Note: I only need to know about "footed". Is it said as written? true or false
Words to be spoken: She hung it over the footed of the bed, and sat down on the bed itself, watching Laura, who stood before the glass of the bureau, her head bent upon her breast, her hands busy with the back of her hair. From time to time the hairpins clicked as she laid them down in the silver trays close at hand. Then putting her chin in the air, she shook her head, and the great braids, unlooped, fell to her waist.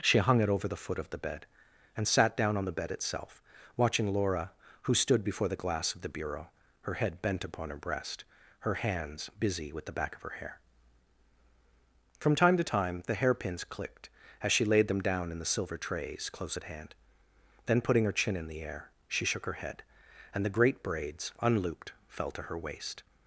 false